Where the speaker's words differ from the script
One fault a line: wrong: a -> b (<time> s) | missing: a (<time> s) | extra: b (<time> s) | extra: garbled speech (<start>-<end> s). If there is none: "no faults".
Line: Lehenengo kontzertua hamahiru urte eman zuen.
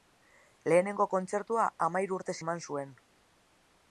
no faults